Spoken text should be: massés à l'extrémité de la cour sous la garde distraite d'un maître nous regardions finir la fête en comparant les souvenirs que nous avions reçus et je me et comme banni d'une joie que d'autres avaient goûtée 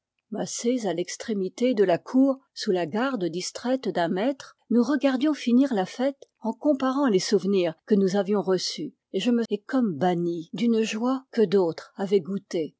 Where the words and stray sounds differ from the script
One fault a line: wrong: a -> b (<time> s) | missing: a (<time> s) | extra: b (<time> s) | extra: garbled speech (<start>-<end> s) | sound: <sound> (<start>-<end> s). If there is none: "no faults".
no faults